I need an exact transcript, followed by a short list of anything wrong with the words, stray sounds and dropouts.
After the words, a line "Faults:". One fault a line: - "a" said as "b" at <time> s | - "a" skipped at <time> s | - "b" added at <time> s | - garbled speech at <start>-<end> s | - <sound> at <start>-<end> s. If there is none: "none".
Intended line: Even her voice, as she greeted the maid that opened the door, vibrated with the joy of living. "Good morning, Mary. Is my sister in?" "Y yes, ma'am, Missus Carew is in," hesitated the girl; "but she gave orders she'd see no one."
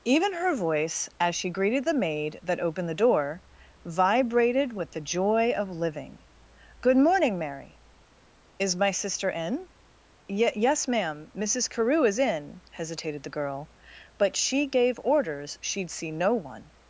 Even her voice, as she greeted the maid that opened the door, vibrated with the joy of living. "Good morning, Mary. Is my sister in?" "Y yes, ma'am, Missus Carew is in," hesitated the girl; "but she gave orders she'd see no one."
Faults:
none